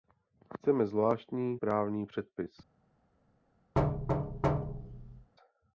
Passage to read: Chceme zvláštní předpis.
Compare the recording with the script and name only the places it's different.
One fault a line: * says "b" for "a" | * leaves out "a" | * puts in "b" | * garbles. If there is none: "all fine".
* puts in "právní"